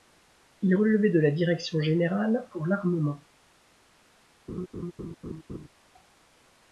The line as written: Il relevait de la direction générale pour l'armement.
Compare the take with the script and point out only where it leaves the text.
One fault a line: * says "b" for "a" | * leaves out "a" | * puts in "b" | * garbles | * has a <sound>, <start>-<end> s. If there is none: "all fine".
* has a laugh, 4.5-5.7 s